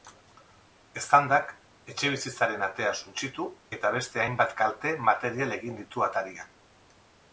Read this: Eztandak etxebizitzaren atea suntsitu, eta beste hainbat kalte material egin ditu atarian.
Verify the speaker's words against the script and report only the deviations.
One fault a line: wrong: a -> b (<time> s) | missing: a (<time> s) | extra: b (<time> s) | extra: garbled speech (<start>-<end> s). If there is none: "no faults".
no faults